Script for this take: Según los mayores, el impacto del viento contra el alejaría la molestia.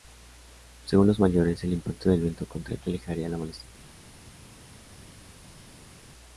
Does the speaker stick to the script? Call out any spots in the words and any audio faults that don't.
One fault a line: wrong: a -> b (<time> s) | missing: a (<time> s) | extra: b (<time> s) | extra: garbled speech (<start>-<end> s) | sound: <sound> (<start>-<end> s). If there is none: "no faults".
no faults